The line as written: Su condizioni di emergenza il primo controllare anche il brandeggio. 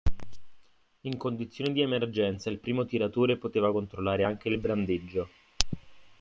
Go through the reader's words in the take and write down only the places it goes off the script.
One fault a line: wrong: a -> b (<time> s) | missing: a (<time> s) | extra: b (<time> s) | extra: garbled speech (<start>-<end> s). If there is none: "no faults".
wrong: Su -> In (1.0 s)
extra: tiratore poteva (2.9 s)